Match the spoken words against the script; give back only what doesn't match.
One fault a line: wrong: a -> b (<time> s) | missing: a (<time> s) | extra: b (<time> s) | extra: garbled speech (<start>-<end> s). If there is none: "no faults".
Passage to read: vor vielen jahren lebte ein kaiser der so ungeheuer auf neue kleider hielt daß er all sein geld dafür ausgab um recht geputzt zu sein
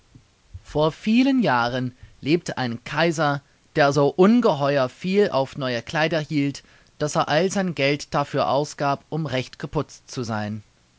extra: viel (4.9 s)